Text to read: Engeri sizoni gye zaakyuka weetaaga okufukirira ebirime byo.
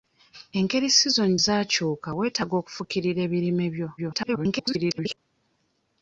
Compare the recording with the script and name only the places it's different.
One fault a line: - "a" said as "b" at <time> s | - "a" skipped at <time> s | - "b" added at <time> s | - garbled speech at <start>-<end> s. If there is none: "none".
- "gye" skipped at 1.4 s
- garbled speech at 4.0-5.2 s